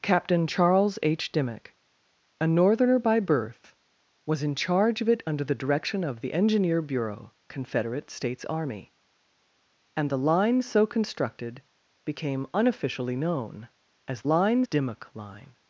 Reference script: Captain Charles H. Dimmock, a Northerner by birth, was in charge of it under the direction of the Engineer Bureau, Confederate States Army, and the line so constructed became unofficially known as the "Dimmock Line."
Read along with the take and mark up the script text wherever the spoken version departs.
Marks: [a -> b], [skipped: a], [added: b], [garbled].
Captain Charles H. Dimmock, a Northerner by birth, was in charge of it under the direction of the Engineer Bureau, Confederate States Army, and the line so constructed became unofficially known as [the -> line] "Dimmock Line."